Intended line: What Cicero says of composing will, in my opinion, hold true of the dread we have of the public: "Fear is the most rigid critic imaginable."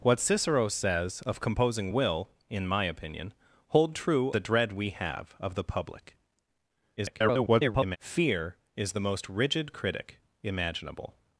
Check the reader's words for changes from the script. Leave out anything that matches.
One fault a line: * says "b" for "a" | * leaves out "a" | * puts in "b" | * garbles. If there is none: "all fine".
* leaves out "of"
* garbles